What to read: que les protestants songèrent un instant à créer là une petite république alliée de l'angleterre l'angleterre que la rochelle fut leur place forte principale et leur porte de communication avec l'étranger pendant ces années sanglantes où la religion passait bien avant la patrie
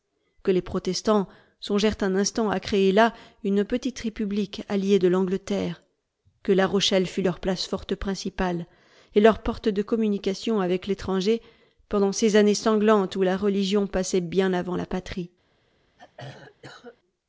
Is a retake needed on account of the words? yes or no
yes